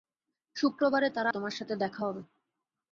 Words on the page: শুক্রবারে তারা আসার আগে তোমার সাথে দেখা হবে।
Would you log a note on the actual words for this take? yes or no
yes